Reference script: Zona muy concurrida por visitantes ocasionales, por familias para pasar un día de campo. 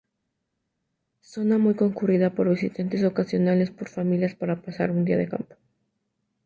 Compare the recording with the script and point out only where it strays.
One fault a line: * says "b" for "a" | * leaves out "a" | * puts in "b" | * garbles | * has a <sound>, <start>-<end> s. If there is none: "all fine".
all fine